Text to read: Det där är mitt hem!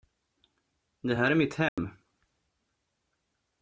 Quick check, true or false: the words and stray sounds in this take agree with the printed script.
false